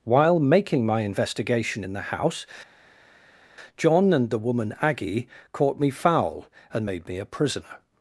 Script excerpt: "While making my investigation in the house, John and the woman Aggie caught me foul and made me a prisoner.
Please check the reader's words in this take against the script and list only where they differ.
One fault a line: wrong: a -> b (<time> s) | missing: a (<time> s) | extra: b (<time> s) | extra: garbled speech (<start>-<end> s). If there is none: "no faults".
no faults